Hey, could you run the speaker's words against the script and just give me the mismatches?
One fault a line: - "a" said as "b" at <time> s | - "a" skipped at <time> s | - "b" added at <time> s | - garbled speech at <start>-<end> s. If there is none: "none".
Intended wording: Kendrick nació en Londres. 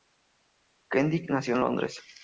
none